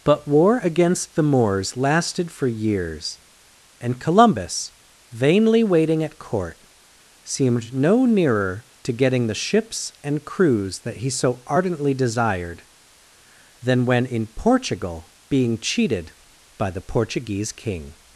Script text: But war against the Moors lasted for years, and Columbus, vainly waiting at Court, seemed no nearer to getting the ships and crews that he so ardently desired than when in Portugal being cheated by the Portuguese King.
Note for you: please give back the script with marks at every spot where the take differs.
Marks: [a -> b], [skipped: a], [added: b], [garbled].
But war against the Moors lasted for years, and Columbus, vainly waiting at Court, seemed no nearer to getting the ships and crews that he so ardently desired than when in Portugal being cheated by the Portuguese King.